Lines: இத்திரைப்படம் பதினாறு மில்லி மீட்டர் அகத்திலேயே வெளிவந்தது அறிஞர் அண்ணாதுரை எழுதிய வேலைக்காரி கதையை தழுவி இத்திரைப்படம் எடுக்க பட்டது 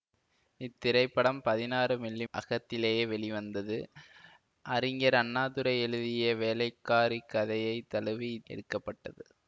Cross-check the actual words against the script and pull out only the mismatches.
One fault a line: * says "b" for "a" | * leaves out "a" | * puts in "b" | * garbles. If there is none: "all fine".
* leaves out "மீட்டர்"
* leaves out "இத்திரைப்படம்"